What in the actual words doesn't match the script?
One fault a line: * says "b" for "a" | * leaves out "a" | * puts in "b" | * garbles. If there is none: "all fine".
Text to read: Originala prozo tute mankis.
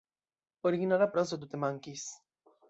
all fine